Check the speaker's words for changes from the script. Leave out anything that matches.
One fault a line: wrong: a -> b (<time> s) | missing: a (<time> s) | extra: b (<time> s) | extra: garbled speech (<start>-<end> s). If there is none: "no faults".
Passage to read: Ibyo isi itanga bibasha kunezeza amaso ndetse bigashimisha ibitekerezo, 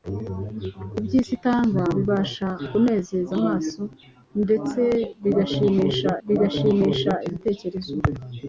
extra: bigashimisha (6.3 s)